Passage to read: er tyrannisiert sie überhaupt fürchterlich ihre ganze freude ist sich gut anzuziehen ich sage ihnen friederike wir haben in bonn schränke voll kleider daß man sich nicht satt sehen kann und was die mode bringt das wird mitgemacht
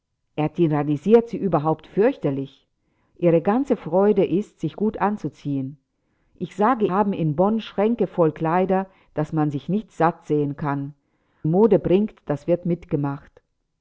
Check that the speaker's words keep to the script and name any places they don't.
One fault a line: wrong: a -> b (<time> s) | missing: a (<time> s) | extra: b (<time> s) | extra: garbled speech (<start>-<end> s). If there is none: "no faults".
missing: ihnen friederike wir (6.9 s)
missing: und was die (10.9 s)